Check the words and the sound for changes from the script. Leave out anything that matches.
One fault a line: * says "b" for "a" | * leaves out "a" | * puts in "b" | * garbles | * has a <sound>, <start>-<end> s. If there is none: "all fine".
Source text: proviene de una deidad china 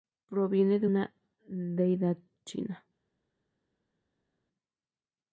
all fine